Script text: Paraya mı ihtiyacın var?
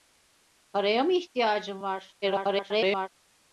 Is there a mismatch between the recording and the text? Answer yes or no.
yes